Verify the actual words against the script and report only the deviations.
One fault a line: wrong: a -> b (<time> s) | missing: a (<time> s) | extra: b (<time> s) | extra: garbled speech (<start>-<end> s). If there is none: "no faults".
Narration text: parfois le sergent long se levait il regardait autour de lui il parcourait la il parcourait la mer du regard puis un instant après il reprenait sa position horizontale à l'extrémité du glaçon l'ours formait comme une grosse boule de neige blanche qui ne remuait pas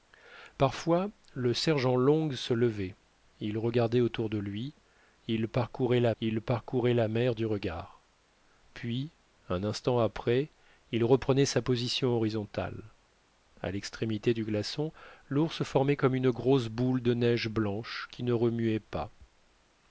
no faults